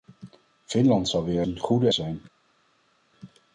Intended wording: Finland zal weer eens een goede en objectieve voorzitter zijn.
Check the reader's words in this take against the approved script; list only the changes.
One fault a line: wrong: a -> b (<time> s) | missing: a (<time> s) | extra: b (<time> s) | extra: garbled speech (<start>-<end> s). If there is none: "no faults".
missing: eens (1.4 s)
missing: en objectieve voorzitter (1.9 s)